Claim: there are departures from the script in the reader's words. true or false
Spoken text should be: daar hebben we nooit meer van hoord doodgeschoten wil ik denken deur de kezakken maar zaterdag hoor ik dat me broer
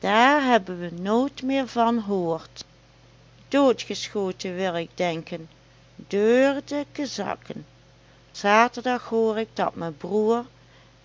true